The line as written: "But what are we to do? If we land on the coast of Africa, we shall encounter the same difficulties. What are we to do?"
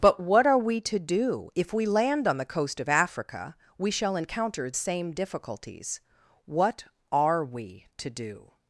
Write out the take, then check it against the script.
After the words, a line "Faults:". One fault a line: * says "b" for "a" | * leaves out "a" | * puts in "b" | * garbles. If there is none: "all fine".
"But what are we to do? If we land on the coast of Africa, we shall encounter same difficulties. What are we to do?"
Faults:
* leaves out "the"